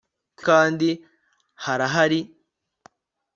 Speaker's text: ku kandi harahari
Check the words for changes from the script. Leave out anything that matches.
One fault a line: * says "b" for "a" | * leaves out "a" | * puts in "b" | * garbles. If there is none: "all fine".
all fine